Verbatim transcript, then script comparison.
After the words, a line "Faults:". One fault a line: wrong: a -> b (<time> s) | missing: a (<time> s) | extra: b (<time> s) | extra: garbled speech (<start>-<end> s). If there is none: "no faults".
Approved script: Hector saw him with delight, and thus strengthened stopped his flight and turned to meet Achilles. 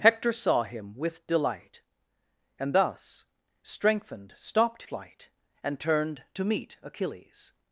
Hector saw him with delight, and thus strengthened stopped flight and turned to meet Achilles.
Faults:
missing: his (4.8 s)